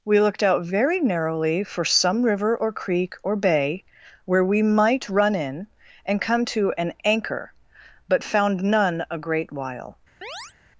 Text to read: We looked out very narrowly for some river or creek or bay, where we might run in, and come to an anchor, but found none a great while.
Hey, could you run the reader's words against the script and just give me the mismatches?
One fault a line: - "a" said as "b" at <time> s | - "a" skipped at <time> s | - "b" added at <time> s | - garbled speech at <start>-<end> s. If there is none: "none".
none